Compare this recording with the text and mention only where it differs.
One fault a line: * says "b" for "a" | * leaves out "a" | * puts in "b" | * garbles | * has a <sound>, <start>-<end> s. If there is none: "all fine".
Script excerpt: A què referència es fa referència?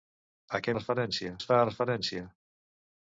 all fine